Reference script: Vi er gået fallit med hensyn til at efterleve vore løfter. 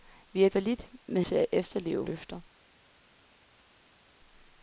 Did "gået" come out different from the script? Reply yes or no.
yes